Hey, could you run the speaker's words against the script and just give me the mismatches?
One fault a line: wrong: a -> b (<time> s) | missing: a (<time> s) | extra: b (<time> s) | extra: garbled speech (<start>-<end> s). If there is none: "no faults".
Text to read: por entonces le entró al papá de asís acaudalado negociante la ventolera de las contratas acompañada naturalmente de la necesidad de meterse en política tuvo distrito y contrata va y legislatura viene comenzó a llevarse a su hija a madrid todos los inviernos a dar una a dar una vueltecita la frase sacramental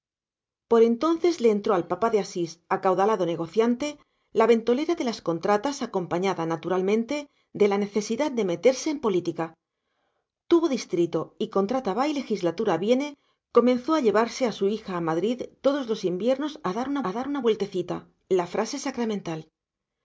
no faults